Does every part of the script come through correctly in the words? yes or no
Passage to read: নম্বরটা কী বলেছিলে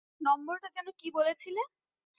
no